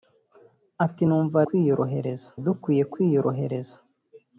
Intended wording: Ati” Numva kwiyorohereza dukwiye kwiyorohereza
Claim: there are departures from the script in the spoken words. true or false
false